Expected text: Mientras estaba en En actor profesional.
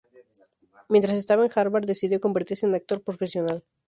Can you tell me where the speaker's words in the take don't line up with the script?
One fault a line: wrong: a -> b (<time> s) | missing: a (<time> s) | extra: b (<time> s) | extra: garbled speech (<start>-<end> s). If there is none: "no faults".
extra: Harvard decidió convertirse (1.5 s)